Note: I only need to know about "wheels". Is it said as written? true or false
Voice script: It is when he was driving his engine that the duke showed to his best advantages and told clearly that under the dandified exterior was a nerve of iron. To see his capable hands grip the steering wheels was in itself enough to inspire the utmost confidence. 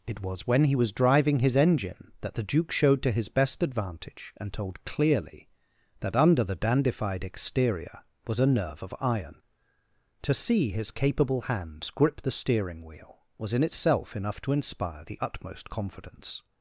false